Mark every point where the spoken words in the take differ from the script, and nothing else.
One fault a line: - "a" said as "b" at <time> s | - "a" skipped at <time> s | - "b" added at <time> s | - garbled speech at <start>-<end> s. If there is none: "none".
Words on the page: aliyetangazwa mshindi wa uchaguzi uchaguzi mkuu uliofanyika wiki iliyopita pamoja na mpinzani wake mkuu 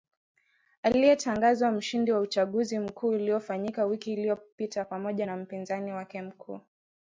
- "uchaguzi" skipped at 2.8 s